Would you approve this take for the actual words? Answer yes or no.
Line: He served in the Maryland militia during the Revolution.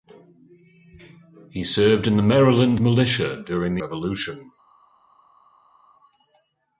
yes